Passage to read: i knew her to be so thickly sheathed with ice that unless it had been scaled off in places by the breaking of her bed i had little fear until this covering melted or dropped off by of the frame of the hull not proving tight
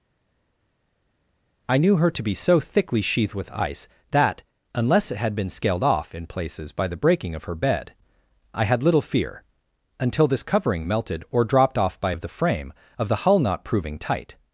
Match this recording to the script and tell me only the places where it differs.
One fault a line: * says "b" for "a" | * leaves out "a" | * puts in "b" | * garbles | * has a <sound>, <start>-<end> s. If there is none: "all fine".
all fine